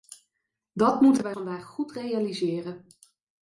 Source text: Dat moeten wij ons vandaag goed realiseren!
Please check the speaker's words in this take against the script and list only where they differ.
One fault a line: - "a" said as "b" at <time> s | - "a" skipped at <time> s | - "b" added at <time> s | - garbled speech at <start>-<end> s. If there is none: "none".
- "ons" skipped at 1.4 s